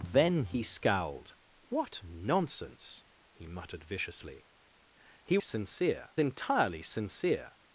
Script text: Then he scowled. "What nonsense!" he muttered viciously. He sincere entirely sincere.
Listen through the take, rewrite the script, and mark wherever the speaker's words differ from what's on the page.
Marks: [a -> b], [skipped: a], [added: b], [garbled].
Then he scowled. "What nonsense!" he muttered viciously. He sincere entirely sincere.